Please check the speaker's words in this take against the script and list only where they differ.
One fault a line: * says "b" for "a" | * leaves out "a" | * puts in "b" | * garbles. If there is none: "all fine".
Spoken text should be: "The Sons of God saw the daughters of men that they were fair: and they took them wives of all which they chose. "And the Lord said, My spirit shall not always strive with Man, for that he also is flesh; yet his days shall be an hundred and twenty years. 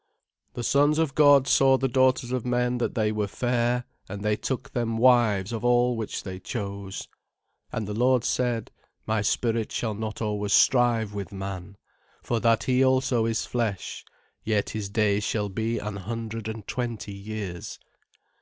all fine